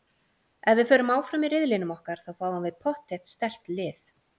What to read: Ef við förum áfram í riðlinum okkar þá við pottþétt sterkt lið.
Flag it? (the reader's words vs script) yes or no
yes